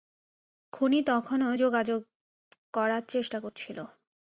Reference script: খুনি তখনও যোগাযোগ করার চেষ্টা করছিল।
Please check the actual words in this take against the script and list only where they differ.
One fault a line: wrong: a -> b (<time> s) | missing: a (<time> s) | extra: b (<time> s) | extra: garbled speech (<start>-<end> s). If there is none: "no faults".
no faults